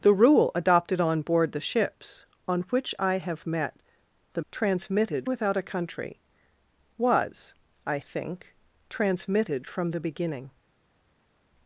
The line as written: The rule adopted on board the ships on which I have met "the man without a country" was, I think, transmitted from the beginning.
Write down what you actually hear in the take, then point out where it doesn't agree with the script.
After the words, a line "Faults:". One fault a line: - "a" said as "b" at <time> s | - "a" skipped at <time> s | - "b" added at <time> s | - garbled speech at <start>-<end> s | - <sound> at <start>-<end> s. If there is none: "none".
The rule adopted on board the ships on which I have met "the transmitted without a country" was, I think, transmitted from the beginning.
Faults:
- "man" said as "transmitted" at 4.5 s